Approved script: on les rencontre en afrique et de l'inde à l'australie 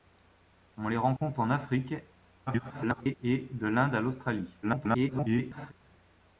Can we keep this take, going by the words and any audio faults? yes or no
no